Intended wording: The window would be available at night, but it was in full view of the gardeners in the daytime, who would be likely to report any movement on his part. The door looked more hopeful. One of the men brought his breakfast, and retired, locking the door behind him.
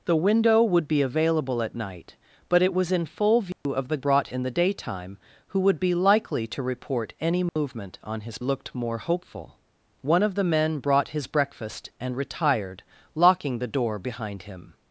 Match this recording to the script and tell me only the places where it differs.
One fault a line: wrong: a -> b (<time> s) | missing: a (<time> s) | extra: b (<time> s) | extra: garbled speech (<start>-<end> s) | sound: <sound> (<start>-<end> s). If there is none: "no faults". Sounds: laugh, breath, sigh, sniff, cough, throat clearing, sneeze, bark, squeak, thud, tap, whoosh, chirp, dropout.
sound: dropout (3.5-3.7 s)
wrong: gardeners -> brought (4.0 s)
sound: dropout (7.5-7.6 s)
missing: part The door (8.4 s)